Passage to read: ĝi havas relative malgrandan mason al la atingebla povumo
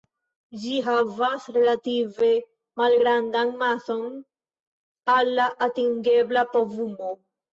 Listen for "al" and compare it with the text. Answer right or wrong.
right